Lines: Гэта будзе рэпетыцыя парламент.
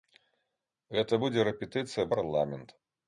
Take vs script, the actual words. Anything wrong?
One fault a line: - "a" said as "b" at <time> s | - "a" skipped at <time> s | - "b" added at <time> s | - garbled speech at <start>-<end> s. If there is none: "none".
none